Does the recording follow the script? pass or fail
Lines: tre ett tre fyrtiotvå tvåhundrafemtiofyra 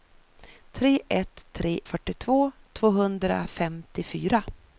pass